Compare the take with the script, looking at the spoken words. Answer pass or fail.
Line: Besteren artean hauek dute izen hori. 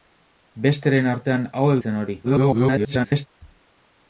fail